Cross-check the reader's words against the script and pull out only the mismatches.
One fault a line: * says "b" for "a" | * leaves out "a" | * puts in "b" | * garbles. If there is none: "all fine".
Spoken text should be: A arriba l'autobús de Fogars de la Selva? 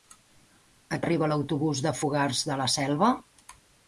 all fine